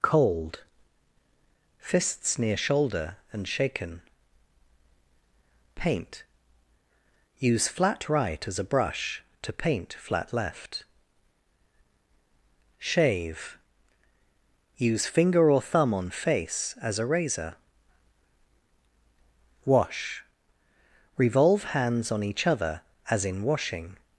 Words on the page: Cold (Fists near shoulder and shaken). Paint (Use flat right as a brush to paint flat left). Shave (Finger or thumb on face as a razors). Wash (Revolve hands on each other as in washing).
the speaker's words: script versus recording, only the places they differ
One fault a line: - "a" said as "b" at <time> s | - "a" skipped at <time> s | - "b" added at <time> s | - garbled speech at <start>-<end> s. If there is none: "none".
- "Use" added at 14.8 s
- "razors" said as "razor" at 17.1 s